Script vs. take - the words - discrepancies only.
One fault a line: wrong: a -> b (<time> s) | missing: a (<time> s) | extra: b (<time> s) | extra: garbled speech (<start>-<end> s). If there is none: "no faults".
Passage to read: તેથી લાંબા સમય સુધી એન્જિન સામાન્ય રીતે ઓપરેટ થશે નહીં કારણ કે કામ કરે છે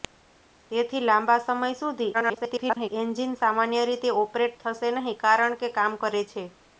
extra: garbled speech (2.1-2.9 s)